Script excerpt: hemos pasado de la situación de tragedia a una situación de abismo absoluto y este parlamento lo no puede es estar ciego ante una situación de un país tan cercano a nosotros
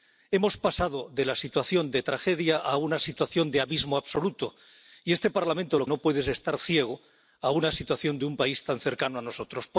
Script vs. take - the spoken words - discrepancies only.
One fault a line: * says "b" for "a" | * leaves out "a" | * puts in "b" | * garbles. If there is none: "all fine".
all fine